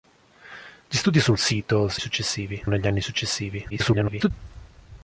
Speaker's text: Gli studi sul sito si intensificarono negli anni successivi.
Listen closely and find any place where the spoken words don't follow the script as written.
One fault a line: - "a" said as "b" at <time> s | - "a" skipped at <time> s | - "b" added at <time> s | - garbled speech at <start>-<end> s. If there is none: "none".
- "intensificarono" said as "successivi" at 2.0 s
- garbled speech at 3.7-4.3 s